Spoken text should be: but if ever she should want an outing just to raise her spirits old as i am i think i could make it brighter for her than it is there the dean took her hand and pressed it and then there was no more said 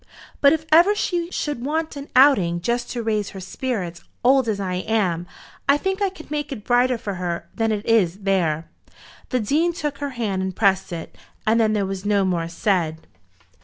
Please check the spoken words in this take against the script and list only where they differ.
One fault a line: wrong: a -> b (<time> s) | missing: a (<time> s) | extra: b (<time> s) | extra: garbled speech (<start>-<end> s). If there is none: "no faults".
no faults